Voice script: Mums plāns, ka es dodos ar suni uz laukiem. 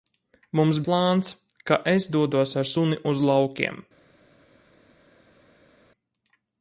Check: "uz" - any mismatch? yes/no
no